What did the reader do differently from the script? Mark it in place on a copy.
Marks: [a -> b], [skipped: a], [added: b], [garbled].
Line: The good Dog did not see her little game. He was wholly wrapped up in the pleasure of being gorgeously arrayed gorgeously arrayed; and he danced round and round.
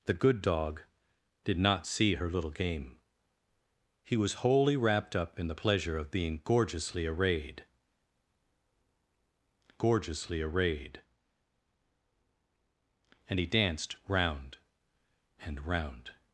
The good Dog did not see her little game. He was wholly wrapped up in the pleasure of being gorgeously arrayed gorgeously arrayed; and he danced round and round.